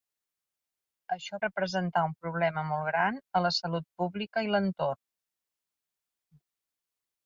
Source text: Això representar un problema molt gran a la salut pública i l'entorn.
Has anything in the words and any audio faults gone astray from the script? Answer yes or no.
no